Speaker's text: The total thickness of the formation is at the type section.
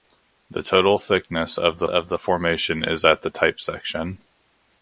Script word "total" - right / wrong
right